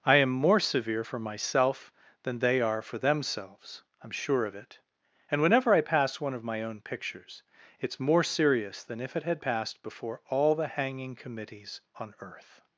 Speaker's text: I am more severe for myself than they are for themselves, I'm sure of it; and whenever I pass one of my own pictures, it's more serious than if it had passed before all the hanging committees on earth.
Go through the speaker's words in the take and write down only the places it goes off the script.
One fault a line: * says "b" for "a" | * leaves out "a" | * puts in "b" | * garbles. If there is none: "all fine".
all fine